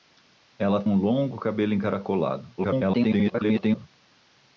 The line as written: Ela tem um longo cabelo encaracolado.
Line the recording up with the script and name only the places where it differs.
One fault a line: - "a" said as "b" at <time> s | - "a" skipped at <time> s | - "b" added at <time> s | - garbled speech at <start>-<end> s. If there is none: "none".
- "tem" skipped at 0.8 s
- garbled speech at 2.6-3.9 s